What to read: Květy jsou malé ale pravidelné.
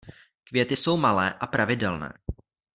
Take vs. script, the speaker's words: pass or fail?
fail